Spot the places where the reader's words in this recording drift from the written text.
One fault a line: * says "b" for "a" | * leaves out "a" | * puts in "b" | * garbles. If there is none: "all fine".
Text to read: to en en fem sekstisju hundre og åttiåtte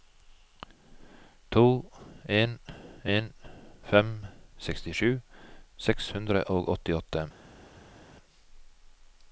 * puts in "seks"